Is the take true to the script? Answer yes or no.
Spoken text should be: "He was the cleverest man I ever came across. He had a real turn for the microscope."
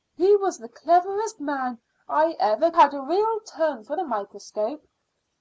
no